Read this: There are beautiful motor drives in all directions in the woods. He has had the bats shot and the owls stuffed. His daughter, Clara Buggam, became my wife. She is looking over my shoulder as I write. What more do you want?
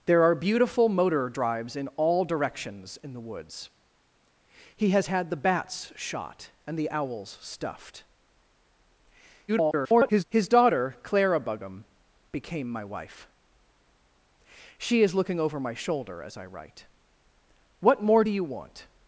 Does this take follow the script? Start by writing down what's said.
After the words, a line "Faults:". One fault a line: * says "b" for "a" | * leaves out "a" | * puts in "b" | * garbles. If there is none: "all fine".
There are beautiful motor drives in all directions in the woods. He has had the bats shot and the owls stuffed. [garbled] His daughter, Clara Buggam, became my wife. She is looking over my shoulder as I write. What more do you want?
Faults:
* garbles